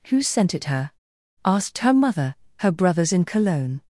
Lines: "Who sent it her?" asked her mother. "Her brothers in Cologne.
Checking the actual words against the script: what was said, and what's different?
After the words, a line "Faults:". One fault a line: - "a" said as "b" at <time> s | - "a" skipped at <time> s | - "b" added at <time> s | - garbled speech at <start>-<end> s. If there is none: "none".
"Who sent it her?" asked her mother. "Her brothers in Cologne.
Faults:
none